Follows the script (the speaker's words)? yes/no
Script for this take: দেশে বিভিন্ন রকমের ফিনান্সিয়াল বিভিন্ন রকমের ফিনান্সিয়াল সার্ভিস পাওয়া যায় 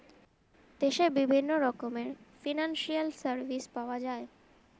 no